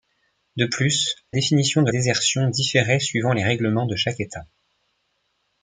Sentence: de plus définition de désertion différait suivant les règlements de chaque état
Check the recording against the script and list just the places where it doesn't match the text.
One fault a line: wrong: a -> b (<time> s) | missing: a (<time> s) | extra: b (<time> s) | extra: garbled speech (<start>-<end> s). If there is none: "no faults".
no faults